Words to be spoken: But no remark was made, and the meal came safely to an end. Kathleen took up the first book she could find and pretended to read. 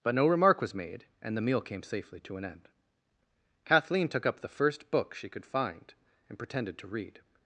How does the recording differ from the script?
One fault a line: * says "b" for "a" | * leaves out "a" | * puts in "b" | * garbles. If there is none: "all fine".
all fine